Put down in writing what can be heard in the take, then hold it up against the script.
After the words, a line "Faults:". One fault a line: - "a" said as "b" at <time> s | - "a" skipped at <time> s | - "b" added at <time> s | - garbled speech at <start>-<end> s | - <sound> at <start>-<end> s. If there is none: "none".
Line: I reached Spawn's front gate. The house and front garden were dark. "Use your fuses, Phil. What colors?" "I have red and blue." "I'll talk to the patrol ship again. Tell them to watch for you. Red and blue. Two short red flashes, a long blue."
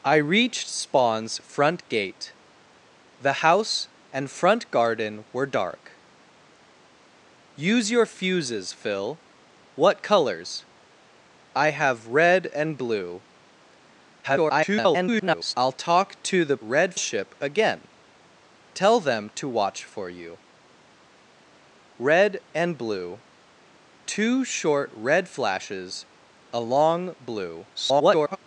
I reached Spawn's front gate. The house and front garden were dark. "Use your fuses, Phil. What colors?" "I have red and blue." [garbled] "I'll talk to the red ship again. Tell them to watch for you. Red and blue. Two short red flashes, a long blue." [garbled]
Faults:
- garbled speech at 14.2-15.5 s
- "patrol" said as "red" at 16.6 s
- garbled speech at 27.7-28.4 s